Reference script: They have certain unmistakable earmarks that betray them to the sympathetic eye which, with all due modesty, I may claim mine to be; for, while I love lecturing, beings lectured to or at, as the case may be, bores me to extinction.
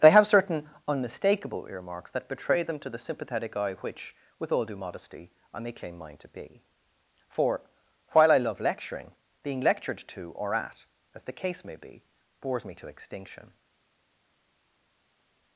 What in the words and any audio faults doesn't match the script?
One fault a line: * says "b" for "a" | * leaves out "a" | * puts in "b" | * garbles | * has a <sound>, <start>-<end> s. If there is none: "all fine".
* says "being" for "beings"